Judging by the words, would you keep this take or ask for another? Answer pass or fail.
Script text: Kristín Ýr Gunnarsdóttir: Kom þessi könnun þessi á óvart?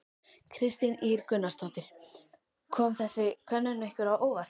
fail